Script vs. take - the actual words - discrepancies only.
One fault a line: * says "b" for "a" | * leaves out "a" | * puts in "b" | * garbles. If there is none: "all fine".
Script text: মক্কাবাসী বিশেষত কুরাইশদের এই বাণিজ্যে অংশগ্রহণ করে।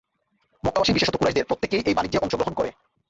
* puts in "প্রত্যেকেই"